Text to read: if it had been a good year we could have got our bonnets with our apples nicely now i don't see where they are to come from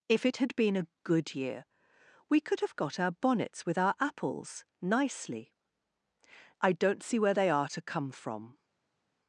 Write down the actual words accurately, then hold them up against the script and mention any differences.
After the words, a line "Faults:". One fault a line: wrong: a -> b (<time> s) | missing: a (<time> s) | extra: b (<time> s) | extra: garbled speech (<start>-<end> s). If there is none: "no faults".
if it had been a good year we could have got our bonnets with our apples nicely i don't see where they are to come from
Faults:
missing: now (5.5 s)